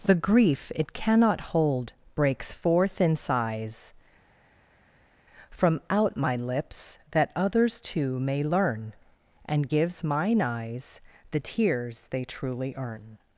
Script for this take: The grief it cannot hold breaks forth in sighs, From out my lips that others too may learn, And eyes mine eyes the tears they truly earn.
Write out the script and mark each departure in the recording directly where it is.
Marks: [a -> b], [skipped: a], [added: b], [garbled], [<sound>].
The grief it cannot hold breaks forth in sighs, From out my lips that others too may learn, And [eyes -> gives] mine eyes the tears they truly earn.